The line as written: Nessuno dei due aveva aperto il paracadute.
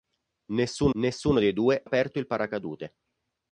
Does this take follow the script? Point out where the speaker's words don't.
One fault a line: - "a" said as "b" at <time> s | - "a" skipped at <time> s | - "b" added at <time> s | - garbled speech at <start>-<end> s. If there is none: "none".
- "nessuno" added at 1.0 s
- "aveva" skipped at 1.8 s